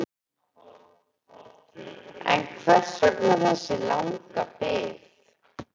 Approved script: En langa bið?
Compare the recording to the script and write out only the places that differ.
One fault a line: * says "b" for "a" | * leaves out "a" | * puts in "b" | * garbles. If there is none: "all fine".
* puts in "hvers vegna þessi"